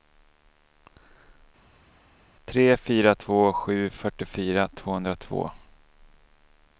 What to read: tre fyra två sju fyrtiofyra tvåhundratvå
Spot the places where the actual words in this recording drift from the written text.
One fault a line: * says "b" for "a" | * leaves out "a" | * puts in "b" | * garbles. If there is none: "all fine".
all fine